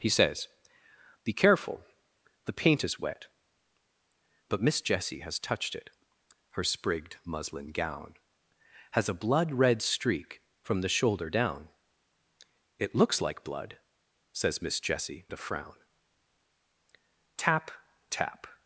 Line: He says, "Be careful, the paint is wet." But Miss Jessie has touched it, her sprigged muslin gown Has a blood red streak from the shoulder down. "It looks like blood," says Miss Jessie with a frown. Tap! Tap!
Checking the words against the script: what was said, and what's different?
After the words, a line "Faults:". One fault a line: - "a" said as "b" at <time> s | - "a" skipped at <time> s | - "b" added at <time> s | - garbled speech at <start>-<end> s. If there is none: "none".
He says, "Be careful, the paint is wet." But Miss Jessie has touched it, her sprigged muslin gown Has a blood red streak from the shoulder down. "It looks like blood," says Miss Jessie a frown. Tap! Tap!
Faults:
- "with" skipped at 15.2 s